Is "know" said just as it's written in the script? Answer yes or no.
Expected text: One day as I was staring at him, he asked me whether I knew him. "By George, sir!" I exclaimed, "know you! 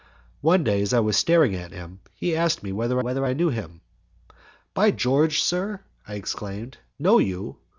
yes